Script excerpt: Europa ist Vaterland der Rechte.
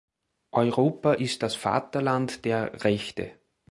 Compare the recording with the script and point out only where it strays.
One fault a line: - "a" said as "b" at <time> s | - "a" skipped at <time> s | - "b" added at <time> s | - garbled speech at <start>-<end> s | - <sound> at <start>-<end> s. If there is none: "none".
- "das" added at 1.4 s